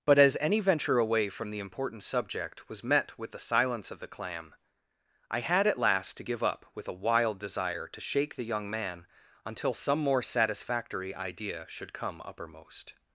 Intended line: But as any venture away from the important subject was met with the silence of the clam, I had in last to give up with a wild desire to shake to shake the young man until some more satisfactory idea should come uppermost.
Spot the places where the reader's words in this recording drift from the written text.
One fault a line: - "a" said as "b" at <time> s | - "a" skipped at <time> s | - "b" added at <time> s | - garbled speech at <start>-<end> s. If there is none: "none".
- "in" said as "at" at 5.7 s
- "to shake" skipped at 8.4 s